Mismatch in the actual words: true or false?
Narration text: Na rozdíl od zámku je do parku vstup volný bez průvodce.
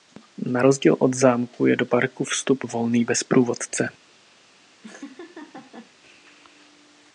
false